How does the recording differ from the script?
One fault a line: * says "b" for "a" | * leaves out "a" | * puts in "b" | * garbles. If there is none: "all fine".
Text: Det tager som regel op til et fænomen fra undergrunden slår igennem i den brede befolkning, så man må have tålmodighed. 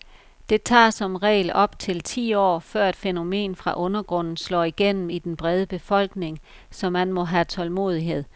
* puts in "ti år før"